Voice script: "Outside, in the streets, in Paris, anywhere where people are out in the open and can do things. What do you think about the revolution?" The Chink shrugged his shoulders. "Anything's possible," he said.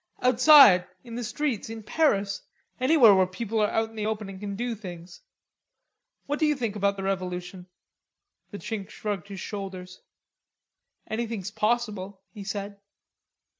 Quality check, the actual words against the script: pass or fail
pass